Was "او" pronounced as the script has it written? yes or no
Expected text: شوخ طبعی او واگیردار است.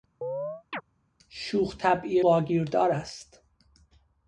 no